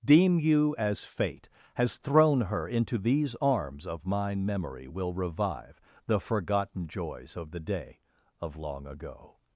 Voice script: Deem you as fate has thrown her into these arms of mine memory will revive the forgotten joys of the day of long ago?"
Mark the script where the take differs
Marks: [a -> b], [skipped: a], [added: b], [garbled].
Deem you as fate has thrown her into these arms of mine memory will revive the forgotten joys of the day of long ago?"